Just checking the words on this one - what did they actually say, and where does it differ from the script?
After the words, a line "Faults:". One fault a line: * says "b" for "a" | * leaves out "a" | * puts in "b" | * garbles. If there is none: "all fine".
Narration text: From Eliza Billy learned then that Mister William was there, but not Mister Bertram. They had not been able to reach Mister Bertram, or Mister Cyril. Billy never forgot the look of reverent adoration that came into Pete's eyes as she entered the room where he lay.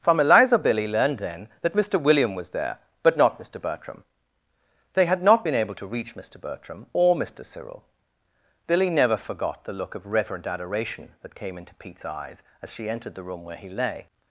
From Eliza Billy learned then that Mister William was there, but not Mister Bertram. They had not been able to reach Mister Bertram, or Mister Cyril. Billy never forgot the look of reverent adoration that came into Pete's eyes as she entered the room where he lay.
Faults:
all fine